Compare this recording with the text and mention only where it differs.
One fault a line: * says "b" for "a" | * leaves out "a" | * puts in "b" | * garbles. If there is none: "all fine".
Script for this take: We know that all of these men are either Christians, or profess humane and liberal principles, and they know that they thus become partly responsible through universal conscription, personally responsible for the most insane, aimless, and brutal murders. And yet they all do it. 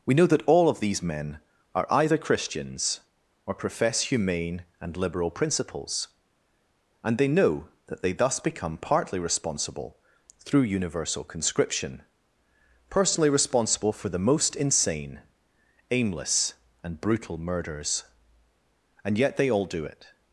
all fine